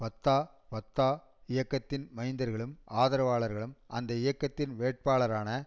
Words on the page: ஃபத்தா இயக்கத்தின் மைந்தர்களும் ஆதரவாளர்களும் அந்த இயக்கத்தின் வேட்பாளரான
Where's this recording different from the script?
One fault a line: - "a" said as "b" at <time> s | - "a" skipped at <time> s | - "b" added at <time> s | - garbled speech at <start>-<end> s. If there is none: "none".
- "ஃபத்தா" added at 0.7 s